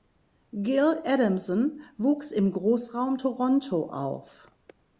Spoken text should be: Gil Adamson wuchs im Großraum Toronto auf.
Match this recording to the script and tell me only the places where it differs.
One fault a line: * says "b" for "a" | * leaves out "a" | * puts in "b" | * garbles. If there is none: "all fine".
all fine